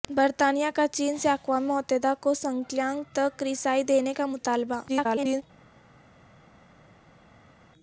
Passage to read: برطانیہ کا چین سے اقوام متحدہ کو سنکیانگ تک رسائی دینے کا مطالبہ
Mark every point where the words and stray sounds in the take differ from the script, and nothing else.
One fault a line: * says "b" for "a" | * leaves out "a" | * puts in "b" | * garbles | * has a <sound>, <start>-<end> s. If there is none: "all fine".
* garbles